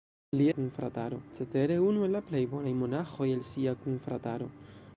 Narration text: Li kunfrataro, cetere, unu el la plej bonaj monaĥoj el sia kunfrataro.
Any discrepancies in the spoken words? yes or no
no